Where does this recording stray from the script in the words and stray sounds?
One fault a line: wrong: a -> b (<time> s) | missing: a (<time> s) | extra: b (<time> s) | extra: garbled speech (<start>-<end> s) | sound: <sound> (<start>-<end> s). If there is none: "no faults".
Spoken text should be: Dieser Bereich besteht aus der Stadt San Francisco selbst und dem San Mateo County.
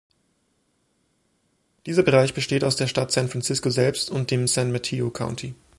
no faults